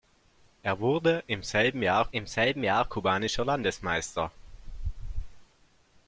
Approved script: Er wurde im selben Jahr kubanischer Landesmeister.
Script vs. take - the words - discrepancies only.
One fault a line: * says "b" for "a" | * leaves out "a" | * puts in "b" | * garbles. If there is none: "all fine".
* puts in "im selben Jahr"